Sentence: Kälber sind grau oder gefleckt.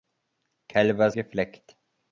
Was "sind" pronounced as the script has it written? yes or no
no